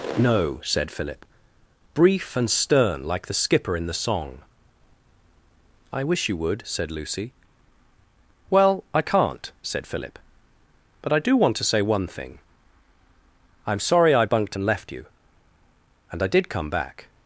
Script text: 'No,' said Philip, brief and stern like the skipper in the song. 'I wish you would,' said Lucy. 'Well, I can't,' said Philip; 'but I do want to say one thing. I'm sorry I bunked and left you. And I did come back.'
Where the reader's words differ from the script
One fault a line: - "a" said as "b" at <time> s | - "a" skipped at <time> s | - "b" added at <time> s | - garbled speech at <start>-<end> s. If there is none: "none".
none